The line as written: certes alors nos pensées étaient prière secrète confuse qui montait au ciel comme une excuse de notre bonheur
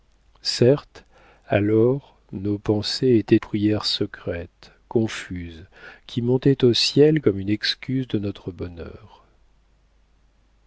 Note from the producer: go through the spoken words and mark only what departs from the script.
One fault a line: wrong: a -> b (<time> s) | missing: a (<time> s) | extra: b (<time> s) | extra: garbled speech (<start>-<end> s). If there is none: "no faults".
no faults